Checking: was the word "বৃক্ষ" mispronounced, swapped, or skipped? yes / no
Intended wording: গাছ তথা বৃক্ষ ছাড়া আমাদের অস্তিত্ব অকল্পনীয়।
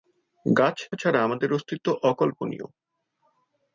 yes